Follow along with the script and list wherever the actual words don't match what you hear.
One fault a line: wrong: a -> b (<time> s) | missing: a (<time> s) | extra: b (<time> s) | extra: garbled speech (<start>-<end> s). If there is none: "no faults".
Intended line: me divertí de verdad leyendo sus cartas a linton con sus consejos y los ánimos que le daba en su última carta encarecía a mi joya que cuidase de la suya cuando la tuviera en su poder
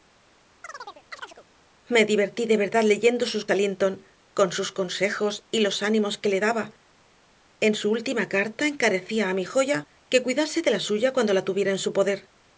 missing: cartas (3.5 s)